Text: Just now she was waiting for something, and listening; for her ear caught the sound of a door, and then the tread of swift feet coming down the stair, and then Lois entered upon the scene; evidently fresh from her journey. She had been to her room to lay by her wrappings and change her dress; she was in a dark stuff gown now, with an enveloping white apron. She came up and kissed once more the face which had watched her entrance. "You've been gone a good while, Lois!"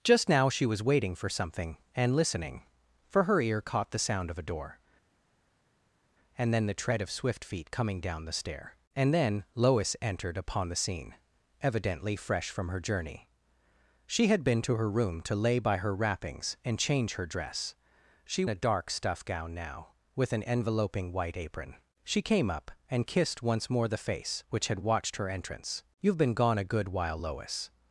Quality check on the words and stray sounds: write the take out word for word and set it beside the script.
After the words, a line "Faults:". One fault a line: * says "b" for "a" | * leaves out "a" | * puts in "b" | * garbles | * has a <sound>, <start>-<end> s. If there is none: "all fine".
Just now she was waiting for something, and listening; for her ear caught the sound of a door, and then the tread of swift feet coming down the stair, and then Lois entered upon the scene; evidently fresh from her journey. She had been to her room to lay by her wrappings and change her dress; she a dark stuff gown now, with an enveloping white apron. She came up and kissed once more the face which had watched her entrance. "You've been gone a good while, Lois!"
Faults:
* leaves out "was in"